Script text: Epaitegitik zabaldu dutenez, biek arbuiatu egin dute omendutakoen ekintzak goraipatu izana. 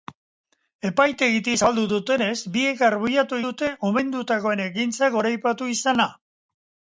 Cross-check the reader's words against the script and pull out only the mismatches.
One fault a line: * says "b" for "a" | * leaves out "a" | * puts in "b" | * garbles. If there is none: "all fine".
* leaves out "egin"